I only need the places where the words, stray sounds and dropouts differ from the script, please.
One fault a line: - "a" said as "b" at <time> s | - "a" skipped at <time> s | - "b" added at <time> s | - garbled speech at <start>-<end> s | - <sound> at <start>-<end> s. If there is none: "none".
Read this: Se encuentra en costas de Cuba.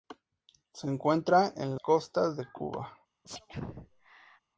- sneeze at 3.2-4.4 s